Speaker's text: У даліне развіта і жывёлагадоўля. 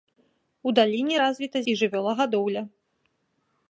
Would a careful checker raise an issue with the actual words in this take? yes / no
no